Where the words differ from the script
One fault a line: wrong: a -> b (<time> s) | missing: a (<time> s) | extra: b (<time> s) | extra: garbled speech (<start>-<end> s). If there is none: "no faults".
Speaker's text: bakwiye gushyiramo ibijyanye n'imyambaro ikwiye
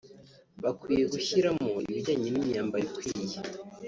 no faults